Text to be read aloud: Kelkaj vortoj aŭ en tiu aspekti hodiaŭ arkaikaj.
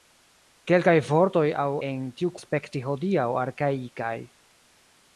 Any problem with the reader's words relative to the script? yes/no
no